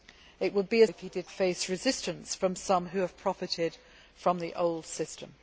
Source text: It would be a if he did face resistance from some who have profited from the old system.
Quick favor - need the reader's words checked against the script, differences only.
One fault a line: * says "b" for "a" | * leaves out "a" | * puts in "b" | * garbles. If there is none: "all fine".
all fine